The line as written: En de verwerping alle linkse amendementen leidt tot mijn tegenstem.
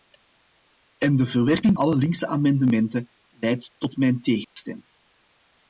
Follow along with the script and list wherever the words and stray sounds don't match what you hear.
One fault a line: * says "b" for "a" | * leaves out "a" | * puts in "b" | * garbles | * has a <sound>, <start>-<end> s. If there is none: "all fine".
* has a dropout, 4.4-4.6 s